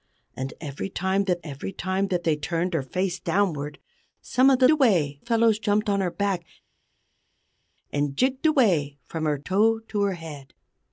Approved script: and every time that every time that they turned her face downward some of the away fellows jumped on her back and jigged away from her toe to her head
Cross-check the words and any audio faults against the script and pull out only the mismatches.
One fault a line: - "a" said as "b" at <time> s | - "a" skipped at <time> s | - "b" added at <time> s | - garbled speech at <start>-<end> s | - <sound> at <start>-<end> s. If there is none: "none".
none